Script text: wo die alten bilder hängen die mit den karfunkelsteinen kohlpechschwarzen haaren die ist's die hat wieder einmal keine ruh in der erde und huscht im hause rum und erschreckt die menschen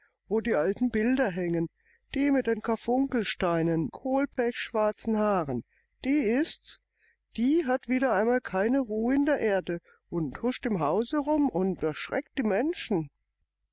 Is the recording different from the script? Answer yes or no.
no